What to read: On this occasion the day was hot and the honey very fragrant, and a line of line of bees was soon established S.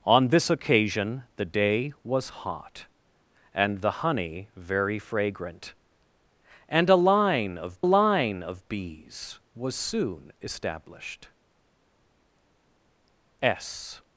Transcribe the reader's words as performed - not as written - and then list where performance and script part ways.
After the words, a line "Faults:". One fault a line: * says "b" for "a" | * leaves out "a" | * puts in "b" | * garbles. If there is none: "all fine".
On this occasion the day was hot and the honey very fragrant, and a line of line of bees was soon established S.
Faults:
all fine